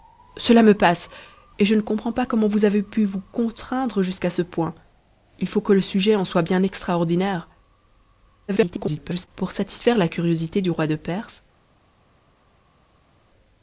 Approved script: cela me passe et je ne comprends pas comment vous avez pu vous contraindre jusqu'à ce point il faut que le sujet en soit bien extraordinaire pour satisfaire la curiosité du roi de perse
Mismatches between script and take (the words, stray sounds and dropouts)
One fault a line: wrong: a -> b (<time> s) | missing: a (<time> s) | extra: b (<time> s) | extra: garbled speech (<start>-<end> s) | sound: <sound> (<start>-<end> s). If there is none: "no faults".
extra: garbled speech (8.5-9.3 s)